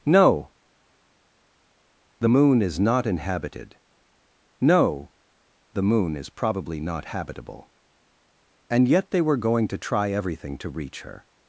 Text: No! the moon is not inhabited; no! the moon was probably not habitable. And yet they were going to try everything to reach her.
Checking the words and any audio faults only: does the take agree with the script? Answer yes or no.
no